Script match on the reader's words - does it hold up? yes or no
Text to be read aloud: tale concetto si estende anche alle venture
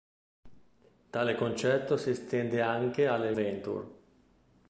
yes